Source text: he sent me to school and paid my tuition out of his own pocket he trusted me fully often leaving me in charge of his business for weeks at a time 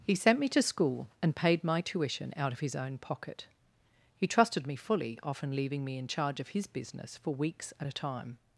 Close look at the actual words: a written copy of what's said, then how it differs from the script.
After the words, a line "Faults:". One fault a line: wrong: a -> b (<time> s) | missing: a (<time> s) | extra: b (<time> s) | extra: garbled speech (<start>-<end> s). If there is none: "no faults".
he sent me to school and paid my tuition out of his own pocket he trusted me fully often leaving me in charge of his business for weeks at a time
Faults:
no faults